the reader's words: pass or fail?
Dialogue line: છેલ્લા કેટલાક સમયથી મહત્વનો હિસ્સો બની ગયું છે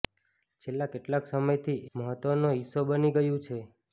pass